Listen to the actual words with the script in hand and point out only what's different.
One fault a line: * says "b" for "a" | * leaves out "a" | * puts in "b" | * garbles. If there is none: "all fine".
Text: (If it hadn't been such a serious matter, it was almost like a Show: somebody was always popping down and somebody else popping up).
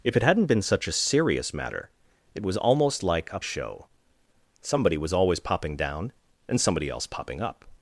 all fine